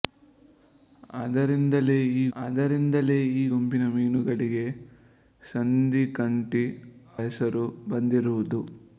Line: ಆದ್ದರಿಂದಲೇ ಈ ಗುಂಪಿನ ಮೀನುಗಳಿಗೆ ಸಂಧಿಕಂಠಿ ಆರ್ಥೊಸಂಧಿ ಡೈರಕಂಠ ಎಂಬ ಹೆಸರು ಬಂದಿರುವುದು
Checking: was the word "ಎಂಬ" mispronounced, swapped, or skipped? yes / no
yes